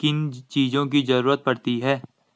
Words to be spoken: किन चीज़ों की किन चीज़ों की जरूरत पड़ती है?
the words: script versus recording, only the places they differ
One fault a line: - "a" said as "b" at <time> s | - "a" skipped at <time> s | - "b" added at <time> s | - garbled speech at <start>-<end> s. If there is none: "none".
- "किन चीज़ों की" skipped at 1.0 s